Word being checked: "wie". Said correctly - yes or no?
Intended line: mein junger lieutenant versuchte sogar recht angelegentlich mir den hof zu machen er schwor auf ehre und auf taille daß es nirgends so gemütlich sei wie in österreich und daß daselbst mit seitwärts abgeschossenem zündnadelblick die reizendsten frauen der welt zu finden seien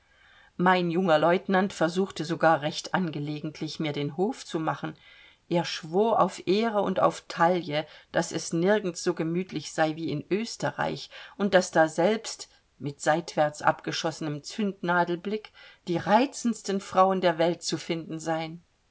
yes